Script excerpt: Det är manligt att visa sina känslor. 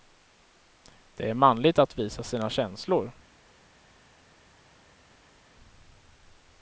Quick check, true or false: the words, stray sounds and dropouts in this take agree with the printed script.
true